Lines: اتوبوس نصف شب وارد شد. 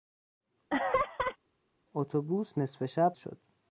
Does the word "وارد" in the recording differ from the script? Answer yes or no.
yes